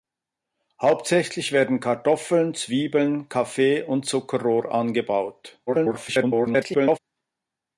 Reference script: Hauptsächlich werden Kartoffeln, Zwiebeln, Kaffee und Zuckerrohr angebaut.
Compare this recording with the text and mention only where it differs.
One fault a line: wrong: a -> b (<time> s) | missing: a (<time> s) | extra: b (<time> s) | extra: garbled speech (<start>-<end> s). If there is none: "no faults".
extra: garbled speech (5.7-7.0 s)